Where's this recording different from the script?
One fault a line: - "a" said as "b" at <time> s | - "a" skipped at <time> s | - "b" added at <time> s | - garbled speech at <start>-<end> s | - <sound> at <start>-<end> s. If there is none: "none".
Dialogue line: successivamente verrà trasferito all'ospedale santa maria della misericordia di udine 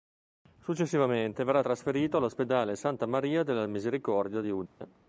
- dropout at 4.7-4.8 s